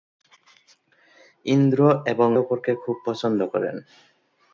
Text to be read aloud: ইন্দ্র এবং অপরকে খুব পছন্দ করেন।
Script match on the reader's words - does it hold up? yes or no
yes